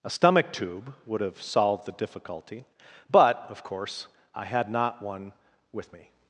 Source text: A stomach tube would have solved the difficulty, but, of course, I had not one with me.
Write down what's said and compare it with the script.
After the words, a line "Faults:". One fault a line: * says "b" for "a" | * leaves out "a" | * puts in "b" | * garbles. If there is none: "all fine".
A stomach tube would have solved the difficulty, but, of course, I had not one with me.
Faults:
all fine